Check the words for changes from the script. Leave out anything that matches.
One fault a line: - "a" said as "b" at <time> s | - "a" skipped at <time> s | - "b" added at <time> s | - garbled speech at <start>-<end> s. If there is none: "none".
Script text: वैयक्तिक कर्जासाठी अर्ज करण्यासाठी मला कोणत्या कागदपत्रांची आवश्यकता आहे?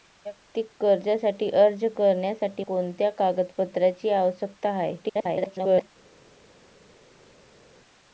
- "मला" skipped at 2.6 s
- garbled speech at 5.0-5.9 s